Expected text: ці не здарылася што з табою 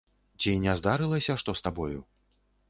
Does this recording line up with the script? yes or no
yes